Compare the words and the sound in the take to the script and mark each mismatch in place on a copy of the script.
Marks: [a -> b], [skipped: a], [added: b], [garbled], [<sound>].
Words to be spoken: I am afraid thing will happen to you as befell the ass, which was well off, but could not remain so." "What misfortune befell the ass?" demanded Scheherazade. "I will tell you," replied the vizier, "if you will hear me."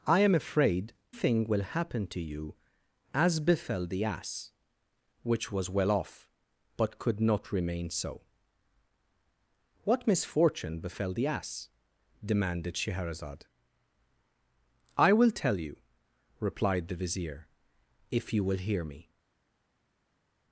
I am afraid thing will happen to you as befell the ass, which was well off, but could not remain so." "What misfortune befell the ass?" demanded Scheherazade. "I will tell you," replied the vizier, "if you will hear me."